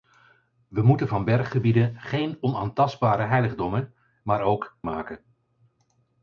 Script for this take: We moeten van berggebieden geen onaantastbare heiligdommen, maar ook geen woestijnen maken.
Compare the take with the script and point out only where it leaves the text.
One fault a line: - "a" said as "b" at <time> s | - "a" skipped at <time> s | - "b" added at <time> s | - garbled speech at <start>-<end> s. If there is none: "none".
- "geen woestijnen" skipped at 4.8 s